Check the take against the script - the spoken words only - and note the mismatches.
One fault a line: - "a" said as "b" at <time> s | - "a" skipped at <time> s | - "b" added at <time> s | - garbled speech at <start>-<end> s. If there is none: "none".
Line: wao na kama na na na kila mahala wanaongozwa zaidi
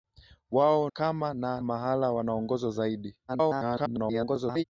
- "na" skipped at 0.9 s
- "na na kila" skipped at 1.6 s
- garbled speech at 3.3-4.6 s